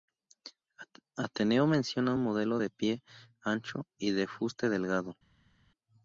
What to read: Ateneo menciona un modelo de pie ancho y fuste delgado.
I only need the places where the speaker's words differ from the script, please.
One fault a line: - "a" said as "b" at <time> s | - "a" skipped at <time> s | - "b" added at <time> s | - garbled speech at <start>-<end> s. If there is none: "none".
- "de" added at 4.1 s